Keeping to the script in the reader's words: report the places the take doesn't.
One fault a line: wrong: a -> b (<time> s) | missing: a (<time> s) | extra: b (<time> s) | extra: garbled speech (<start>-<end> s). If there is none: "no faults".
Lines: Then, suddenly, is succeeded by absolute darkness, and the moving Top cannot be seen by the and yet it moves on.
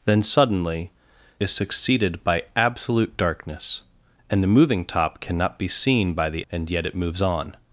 no faults